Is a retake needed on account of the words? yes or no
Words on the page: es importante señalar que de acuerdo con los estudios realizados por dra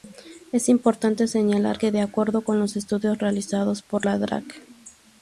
yes